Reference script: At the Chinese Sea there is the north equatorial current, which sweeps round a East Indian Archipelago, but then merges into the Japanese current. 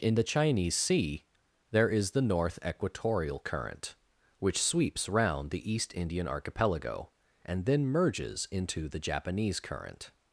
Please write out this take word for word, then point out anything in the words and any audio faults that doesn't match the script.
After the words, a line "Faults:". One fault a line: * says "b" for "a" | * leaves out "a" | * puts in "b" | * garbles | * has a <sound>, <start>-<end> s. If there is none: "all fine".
In the Chinese Sea there is the north equatorial current, which sweeps round the East Indian Archipelago, and then merges into the Japanese current.
Faults:
* says "In" for "At"
* says "the" for "a"
* says "and" for "but"